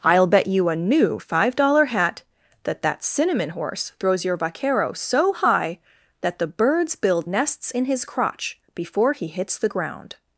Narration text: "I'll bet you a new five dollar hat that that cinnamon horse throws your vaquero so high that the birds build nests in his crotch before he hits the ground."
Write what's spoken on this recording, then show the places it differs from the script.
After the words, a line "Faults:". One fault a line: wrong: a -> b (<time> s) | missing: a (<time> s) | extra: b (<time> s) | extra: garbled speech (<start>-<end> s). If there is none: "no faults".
"I'll bet you a new five dollar hat that that cinnamon horse throws your vaquero so high that the birds build nests in his crotch before he hits the ground."
Faults:
no faults